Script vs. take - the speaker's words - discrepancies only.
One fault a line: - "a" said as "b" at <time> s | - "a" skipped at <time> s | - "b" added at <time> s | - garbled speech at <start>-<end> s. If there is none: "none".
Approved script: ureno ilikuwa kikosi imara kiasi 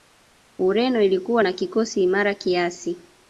- "na" added at 1.4 s